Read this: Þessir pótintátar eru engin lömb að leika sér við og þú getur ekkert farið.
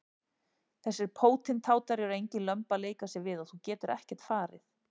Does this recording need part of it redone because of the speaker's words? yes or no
no